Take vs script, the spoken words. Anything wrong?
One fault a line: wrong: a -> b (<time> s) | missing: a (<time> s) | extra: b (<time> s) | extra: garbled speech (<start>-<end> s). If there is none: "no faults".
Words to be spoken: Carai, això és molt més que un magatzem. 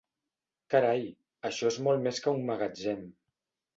no faults